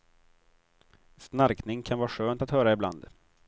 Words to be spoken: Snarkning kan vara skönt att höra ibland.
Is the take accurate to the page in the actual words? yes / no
yes